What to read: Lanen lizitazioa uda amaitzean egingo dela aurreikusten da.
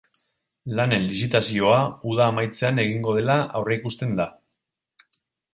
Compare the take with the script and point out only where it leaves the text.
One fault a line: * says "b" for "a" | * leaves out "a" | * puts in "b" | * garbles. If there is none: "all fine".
all fine